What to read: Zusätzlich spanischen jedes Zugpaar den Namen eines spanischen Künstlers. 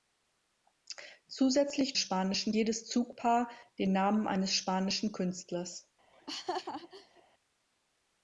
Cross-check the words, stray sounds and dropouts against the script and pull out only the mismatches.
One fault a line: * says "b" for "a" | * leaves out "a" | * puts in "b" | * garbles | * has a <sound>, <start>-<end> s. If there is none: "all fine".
* has a laugh, 6.1-7.2 s